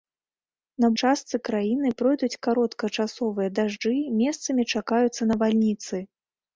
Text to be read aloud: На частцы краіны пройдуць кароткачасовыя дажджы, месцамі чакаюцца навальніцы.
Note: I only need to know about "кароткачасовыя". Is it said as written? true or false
true